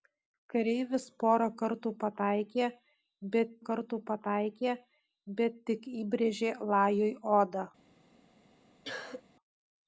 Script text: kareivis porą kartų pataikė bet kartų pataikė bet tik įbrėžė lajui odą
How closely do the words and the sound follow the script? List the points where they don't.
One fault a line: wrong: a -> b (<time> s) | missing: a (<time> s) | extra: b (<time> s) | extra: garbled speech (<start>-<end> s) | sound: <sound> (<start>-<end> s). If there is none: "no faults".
sound: cough (8.8-9.2 s)